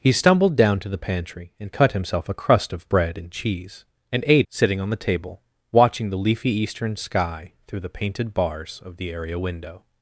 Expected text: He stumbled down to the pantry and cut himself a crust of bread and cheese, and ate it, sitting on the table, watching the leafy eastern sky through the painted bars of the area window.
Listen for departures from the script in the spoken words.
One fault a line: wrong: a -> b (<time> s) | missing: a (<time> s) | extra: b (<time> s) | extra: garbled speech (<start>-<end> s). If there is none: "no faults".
missing: it (4.5 s)